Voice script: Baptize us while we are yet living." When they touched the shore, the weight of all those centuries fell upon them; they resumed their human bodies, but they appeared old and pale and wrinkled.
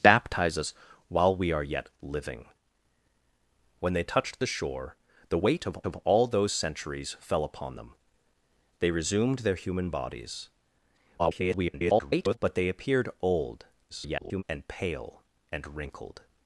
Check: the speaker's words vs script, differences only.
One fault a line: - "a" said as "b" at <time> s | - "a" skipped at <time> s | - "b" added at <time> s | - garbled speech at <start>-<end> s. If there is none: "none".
- "of" added at 5.8 s
- garbled speech at 11.2-12.4 s
- garbled speech at 13.9-14.4 s